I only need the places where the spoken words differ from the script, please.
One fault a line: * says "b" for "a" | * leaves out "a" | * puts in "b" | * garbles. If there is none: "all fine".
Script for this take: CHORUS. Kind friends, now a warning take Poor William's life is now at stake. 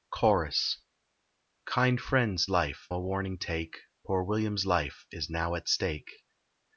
* says "life" for "now"